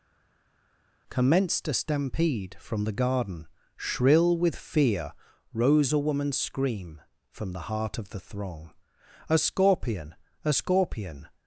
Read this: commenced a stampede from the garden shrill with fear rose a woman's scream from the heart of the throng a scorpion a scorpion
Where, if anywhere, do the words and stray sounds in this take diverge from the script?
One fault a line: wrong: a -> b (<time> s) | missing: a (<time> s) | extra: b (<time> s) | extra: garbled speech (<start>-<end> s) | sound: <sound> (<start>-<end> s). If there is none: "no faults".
no faults